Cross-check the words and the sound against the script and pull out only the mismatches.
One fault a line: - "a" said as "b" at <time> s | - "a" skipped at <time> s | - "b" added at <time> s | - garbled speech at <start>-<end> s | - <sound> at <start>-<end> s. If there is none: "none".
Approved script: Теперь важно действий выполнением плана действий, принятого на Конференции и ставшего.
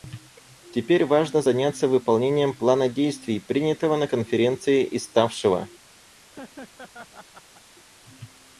- "действий" said as "заняться" at 1.4 s
- laugh at 6.3-7.6 s